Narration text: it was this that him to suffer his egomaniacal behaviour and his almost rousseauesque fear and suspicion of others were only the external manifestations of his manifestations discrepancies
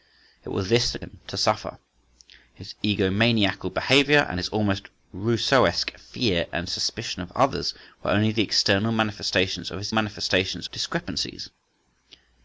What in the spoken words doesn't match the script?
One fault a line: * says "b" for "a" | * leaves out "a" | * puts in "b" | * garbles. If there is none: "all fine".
all fine